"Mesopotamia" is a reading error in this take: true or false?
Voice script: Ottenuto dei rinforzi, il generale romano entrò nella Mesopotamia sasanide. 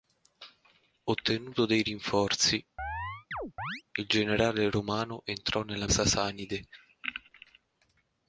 true